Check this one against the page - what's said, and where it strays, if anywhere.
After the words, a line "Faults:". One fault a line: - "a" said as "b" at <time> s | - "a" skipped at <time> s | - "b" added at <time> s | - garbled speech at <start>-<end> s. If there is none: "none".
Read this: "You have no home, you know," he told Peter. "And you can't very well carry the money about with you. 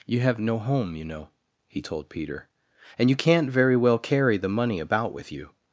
"You have no home, you know," he told Peter. "And you can't very well carry the money about with you.
Faults:
none